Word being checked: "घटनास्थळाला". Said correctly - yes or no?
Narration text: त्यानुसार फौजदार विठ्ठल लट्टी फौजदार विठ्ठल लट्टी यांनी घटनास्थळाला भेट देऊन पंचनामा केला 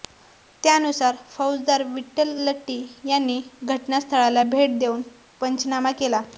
yes